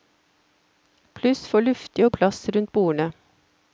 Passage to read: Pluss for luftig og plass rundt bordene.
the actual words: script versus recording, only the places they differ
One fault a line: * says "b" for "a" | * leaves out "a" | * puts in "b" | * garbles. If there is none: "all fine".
all fine